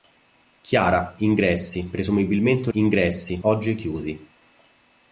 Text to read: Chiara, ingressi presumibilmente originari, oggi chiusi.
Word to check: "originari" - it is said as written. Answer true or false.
false